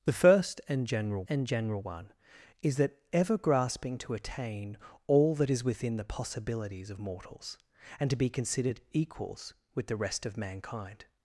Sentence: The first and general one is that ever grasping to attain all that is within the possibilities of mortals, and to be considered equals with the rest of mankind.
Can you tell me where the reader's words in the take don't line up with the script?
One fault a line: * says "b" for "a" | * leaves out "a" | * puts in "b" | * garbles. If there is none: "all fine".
* puts in "and general"